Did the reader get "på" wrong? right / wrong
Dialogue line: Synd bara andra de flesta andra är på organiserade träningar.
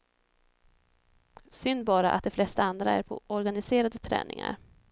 right